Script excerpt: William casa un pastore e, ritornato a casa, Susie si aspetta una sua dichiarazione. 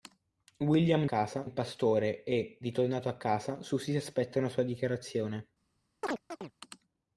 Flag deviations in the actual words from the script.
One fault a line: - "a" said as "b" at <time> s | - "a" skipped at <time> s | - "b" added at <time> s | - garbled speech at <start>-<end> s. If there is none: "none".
none